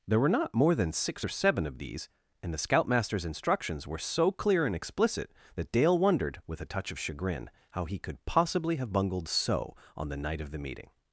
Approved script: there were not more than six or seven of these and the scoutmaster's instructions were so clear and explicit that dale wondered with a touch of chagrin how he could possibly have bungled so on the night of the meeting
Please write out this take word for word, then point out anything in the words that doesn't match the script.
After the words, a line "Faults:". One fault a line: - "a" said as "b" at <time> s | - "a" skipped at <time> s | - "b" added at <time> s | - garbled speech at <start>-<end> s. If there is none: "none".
there were not more than six or seven of these and the scoutmaster's instructions were so clear and explicit that dale wondered with a touch of chagrin how he could possibly have bungled so on the night of the meeting
Faults:
none